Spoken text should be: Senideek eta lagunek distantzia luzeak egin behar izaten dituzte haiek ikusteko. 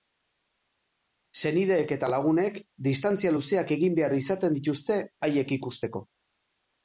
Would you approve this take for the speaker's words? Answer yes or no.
yes